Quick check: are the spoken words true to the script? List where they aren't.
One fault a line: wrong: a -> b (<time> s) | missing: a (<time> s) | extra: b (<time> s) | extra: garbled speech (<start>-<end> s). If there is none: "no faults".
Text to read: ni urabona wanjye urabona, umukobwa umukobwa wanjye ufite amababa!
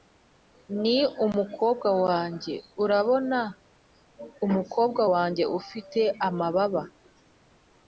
wrong: urabona -> umukobwa (1.2 s)
missing: umukobwa (5.0 s)